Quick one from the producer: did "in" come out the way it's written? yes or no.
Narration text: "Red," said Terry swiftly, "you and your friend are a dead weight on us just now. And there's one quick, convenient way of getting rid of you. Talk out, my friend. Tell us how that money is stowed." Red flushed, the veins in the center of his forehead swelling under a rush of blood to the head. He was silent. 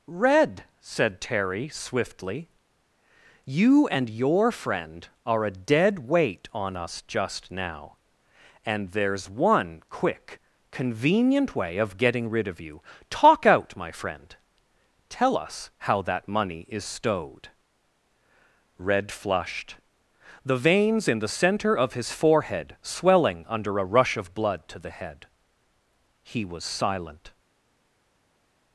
yes